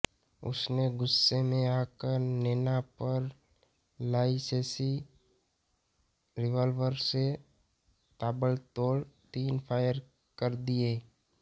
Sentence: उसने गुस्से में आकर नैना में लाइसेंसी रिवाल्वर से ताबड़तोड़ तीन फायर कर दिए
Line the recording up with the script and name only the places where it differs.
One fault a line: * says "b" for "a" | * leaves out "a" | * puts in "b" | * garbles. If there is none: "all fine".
* says "पर" for "में"